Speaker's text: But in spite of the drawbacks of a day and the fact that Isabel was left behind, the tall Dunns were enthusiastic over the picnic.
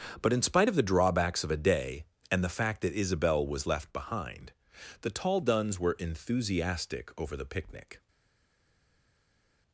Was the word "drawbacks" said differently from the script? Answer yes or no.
no